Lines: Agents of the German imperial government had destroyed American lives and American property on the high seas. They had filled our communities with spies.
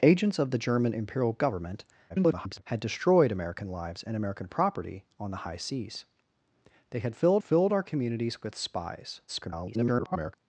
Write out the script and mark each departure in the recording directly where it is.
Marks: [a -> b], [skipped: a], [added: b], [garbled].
Agents of the German imperial government [garbled] had destroyed American lives and American property on the high seas. They had filled [added: filled] our communities with spies. [garbled]